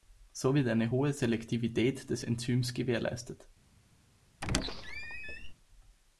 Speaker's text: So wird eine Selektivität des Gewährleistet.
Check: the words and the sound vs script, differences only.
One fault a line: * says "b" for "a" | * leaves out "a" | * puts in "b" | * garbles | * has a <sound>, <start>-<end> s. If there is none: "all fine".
* puts in "hohe"
* puts in "Enzyms"
* has a squeak, 4.4-5.5 s